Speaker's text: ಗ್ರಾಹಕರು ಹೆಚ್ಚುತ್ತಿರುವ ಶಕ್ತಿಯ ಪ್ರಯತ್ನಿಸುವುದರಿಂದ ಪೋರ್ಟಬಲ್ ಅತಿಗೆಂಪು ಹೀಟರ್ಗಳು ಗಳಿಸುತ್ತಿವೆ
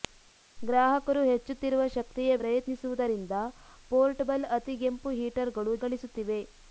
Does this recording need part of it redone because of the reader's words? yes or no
no